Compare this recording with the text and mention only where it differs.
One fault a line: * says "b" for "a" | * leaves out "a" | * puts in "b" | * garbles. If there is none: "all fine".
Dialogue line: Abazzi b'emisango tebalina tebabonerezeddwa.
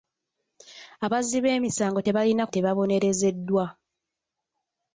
all fine